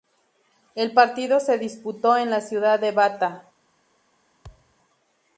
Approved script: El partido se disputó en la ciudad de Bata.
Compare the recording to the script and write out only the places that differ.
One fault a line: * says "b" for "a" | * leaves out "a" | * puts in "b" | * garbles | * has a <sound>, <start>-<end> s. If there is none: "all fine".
* has a thud, 4.4-4.8 s